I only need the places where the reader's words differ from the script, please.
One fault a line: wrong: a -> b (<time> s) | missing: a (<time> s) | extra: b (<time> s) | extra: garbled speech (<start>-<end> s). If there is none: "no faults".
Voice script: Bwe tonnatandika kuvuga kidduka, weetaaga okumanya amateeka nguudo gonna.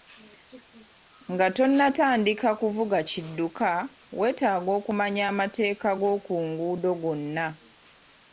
wrong: Bwe -> Nga (1.3 s)
extra: g'oku (6.0 s)